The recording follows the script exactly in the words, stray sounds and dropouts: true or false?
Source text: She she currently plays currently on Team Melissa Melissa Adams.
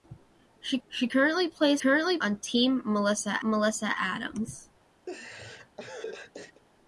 false